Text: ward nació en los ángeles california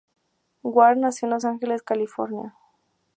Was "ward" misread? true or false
false